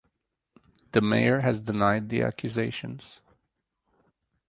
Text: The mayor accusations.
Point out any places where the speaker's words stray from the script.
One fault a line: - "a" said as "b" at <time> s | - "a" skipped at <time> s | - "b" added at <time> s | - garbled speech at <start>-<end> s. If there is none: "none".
- "has denied the" added at 1.4 s